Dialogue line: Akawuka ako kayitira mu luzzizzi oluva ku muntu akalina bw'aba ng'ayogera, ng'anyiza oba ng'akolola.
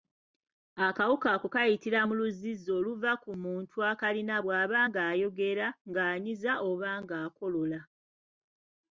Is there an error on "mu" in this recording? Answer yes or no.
no